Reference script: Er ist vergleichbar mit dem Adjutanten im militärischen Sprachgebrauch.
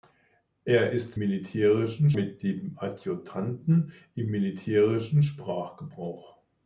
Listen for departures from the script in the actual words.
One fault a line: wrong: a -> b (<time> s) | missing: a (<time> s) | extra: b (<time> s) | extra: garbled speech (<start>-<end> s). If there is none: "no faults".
wrong: vergleichbar -> militärischen (1.2 s)